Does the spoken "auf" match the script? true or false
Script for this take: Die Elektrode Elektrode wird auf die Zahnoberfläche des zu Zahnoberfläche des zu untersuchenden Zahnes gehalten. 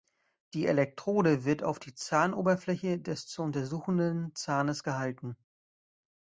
true